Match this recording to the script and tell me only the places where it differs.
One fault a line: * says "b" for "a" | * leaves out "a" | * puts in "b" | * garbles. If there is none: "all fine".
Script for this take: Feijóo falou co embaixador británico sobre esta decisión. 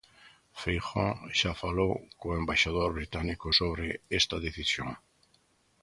* puts in "xa"